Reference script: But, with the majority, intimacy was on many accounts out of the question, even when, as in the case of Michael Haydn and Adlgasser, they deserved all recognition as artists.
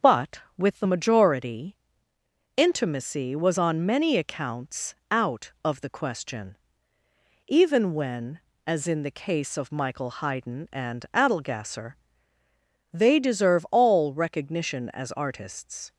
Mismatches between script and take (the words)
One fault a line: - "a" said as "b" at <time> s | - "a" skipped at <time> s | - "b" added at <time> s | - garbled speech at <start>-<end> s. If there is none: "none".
- "deserved" said as "deserve" at 13.2 s